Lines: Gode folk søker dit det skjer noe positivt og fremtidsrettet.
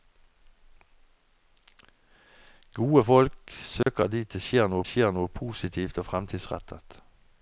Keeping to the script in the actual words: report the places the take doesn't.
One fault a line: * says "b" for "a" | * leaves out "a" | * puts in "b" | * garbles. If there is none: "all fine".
* puts in "skjer noe"